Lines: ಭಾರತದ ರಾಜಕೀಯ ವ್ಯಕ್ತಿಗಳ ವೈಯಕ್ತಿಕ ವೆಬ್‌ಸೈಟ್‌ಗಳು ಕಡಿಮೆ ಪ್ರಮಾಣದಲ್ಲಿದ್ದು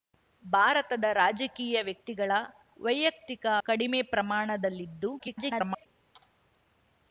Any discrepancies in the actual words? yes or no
yes